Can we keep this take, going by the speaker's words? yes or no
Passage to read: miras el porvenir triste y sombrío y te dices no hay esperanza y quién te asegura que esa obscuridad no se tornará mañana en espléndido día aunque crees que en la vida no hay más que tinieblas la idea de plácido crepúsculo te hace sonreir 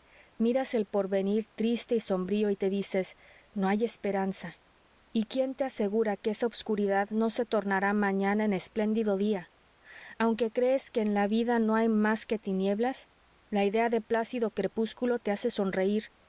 yes